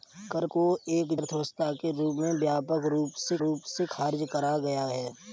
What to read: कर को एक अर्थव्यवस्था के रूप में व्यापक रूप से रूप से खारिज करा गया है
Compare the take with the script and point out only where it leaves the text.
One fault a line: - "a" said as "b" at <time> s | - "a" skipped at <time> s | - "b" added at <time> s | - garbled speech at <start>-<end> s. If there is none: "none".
none